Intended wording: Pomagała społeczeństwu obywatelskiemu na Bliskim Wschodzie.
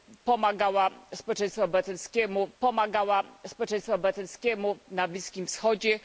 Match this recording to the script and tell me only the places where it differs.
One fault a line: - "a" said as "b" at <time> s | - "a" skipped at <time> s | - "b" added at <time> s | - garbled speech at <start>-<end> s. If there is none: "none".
- "pomagała społeczeństwu obywatelskiemu" added at 2.6 s